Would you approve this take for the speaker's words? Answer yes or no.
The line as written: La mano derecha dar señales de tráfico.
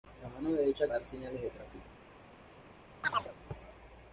yes